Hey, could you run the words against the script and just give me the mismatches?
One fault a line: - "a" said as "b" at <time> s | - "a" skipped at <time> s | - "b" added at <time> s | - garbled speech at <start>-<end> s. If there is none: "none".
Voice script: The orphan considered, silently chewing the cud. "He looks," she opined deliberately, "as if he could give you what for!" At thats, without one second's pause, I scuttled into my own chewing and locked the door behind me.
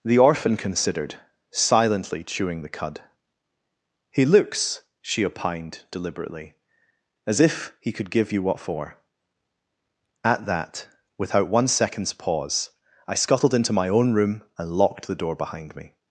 - "thats" said as "that" at 10.5 s
- "chewing" said as "room" at 14.1 s